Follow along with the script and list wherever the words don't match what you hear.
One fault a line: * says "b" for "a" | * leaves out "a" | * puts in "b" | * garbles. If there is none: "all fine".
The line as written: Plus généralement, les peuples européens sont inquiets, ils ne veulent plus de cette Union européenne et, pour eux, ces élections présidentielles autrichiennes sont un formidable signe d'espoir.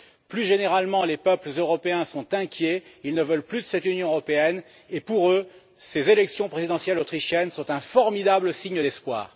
all fine